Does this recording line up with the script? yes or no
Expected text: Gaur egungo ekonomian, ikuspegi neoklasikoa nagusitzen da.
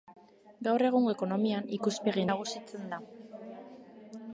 no